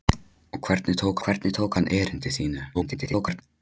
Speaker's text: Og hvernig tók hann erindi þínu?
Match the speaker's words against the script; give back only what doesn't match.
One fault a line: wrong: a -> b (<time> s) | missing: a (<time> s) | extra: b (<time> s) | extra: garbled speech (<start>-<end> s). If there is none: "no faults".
extra: hvernig tók (1.3 s)
extra: garbled speech (2.7-3.4 s)